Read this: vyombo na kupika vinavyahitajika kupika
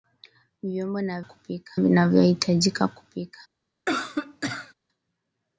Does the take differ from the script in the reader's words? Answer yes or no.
no